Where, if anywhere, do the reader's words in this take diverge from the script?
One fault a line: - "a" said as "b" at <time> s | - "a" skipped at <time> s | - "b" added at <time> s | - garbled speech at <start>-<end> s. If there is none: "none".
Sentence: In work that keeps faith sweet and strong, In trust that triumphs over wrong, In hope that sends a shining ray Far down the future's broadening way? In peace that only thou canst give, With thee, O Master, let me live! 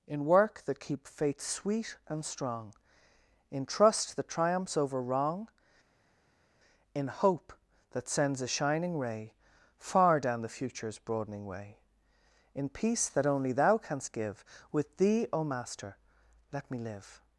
- "keeps" said as "keep" at 0.8 s